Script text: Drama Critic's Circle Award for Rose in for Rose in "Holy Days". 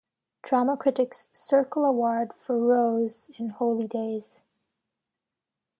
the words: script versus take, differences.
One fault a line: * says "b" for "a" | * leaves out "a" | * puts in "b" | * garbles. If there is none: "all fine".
* leaves out "for Rose in"